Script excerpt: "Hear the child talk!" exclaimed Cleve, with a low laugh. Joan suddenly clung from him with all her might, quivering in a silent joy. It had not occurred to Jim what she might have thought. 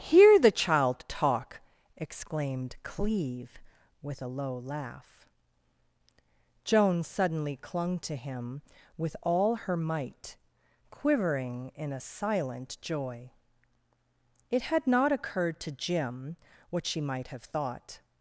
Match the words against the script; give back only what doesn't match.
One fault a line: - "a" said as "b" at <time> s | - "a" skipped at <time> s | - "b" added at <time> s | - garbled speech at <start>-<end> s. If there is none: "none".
- "from" said as "to" at 8.0 s